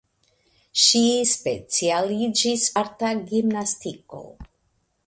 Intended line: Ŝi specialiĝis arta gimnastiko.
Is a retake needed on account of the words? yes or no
no